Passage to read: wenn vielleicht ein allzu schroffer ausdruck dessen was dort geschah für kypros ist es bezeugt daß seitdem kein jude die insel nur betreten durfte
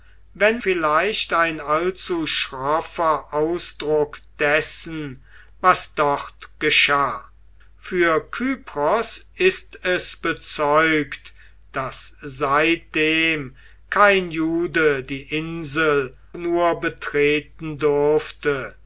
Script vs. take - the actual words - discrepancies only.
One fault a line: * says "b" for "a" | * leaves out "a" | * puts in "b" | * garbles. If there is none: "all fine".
all fine